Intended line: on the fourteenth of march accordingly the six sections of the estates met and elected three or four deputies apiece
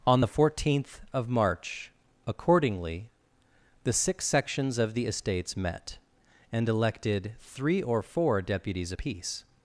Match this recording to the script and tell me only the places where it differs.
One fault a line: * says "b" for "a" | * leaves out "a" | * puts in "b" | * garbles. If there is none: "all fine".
all fine